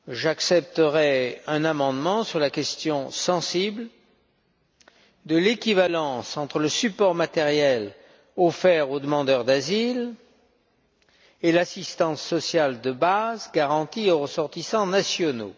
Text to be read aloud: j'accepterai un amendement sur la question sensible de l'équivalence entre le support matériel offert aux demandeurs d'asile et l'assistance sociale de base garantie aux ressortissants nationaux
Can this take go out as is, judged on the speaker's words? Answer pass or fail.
pass